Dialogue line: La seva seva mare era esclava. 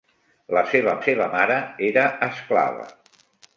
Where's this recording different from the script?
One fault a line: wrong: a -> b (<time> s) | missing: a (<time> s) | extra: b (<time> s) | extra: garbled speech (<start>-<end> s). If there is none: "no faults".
no faults